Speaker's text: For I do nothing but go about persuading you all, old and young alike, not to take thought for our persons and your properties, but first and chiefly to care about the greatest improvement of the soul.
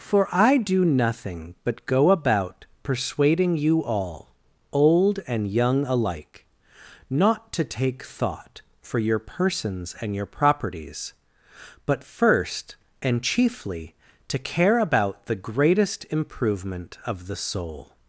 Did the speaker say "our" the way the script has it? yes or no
no